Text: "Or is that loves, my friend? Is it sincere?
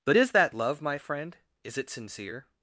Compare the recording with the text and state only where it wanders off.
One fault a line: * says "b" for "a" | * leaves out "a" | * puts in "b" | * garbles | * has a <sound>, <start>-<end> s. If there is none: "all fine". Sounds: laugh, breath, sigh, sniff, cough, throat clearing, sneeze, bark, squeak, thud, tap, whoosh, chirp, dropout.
* says "But" for "Or"
* says "love" for "loves"